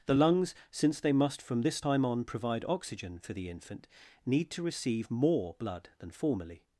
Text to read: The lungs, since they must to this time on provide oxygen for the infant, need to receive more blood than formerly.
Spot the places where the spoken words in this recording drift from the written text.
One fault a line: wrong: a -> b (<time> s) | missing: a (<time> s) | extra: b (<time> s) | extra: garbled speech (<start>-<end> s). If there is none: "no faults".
wrong: to -> from (1.4 s)